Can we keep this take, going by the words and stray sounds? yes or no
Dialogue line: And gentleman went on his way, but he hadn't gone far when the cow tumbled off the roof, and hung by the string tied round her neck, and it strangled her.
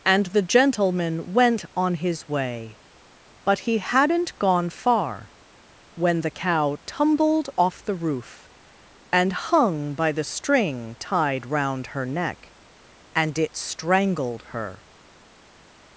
no